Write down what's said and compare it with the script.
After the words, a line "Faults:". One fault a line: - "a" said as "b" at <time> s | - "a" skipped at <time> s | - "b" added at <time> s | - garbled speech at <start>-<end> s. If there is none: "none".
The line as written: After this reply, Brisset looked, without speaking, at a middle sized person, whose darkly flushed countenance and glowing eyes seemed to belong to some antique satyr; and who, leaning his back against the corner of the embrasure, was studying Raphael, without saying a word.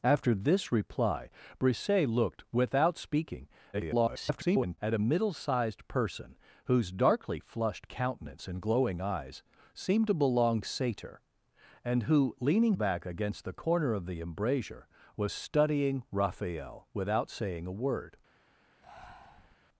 After this reply, Brisset looked, without speaking, [garbled] at a middle sized person, whose darkly flushed countenance and glowing eyes seemed to belong satyr; and who, leaning back against the corner of the embrasure, was studying Raphael, without saying a word.
Faults:
- garbled speech at 3.7-4.8 s
- "to some antique" skipped at 10.6 s
- "his" skipped at 12.7 s